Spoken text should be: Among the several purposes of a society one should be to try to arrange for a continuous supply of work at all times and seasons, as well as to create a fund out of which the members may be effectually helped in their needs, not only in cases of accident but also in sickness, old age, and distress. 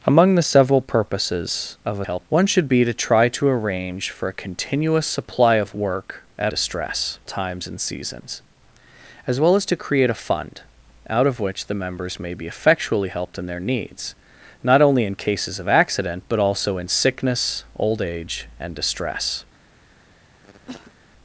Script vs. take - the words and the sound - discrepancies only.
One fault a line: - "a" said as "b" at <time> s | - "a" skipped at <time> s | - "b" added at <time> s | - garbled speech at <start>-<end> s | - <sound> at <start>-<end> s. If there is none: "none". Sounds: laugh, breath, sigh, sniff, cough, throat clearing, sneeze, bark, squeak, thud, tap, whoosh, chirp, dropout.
- "society" said as "helped" at 2.0 s
- "all" said as "distress" at 6.5 s
- cough at 20.4-20.9 s